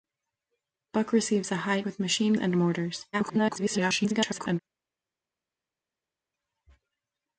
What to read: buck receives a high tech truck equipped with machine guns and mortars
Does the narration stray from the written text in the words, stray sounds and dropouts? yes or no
yes